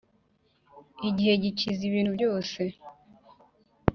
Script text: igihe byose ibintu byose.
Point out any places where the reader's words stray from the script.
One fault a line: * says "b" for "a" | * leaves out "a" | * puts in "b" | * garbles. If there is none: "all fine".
* says "gikiza" for "byose"